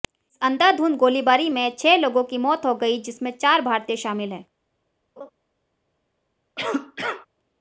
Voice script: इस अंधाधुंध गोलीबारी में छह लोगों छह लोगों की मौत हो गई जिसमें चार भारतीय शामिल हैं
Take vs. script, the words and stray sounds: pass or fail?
fail